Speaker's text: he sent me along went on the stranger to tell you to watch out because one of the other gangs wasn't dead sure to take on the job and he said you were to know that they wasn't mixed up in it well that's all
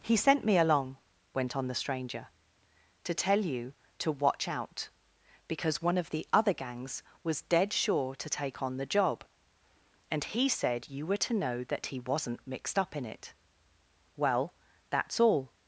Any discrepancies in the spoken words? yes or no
yes